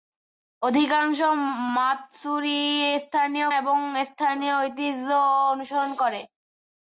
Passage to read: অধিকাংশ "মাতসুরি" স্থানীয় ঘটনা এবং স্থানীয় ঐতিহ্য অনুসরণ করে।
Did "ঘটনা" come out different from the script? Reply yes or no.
yes